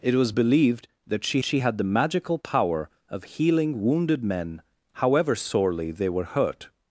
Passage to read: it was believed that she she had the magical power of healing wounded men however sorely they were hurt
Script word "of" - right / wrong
right